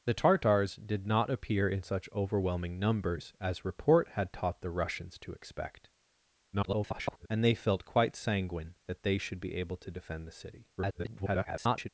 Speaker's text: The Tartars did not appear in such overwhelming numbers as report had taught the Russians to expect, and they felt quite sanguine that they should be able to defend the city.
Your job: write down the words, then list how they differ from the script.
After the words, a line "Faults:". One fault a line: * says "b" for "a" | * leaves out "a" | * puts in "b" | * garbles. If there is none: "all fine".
The Tartars did not appear in such overwhelming numbers as report had taught the Russians to expect, [garbled] and they felt quite sanguine that they should be able to defend the city. [garbled]
Faults:
* garbles
* garbles